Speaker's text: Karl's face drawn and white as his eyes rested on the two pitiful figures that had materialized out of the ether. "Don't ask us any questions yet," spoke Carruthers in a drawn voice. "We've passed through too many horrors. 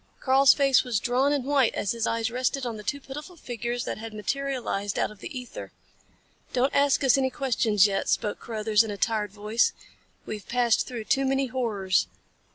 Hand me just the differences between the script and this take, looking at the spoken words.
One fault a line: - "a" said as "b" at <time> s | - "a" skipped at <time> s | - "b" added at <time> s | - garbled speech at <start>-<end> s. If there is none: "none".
- "was" added at 0.8 s
- "drawn" said as "tired" at 9.0 s